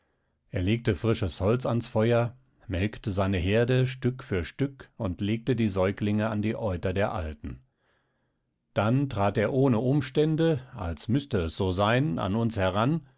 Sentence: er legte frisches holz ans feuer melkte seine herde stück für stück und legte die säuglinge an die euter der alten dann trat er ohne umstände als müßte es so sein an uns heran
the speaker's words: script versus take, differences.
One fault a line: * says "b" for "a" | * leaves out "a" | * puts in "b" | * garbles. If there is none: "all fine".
all fine